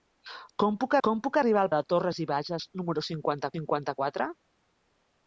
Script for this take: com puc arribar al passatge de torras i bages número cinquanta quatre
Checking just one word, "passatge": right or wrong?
wrong